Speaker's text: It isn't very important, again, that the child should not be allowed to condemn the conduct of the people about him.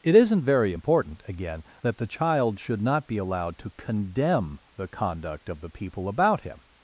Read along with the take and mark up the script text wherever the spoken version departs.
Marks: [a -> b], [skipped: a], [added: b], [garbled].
It isn't very important, again, that the child should not be allowed to condemn the conduct of the people about him.